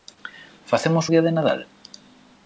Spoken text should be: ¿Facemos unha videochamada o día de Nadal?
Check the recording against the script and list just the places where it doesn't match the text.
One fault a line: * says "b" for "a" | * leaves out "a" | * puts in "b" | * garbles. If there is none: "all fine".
* leaves out "unha videochamada"